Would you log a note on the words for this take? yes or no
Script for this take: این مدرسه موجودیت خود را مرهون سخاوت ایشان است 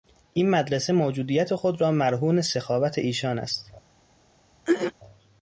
no